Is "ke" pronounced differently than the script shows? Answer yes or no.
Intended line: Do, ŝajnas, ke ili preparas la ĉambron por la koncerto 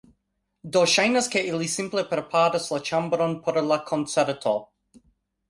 no